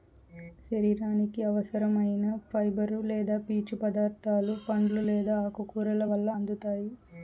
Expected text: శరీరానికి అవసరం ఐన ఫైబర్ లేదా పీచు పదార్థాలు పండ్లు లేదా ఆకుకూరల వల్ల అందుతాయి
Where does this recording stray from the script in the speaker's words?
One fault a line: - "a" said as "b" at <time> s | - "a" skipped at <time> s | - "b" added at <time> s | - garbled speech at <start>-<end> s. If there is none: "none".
none